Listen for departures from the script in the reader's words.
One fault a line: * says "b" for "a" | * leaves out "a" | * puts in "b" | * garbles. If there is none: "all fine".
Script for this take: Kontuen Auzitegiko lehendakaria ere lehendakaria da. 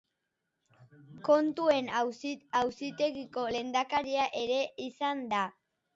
* says "izan" for "lehendakaria"